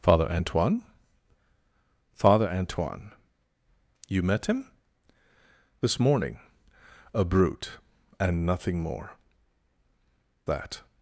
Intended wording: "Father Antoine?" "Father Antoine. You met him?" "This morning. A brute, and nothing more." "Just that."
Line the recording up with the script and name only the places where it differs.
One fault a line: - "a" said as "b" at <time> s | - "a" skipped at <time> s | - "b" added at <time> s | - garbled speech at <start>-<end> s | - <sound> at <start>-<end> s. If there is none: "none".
- "Just" skipped at 9.2 s